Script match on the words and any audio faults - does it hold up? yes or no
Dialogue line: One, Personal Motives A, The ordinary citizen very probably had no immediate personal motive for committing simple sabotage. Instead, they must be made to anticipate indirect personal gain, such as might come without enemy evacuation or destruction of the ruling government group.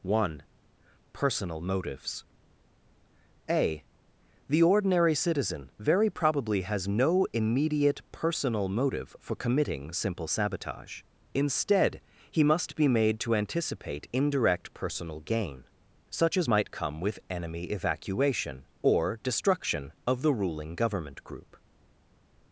no